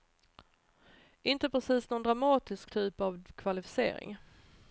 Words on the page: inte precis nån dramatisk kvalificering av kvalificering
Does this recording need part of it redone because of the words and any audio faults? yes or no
yes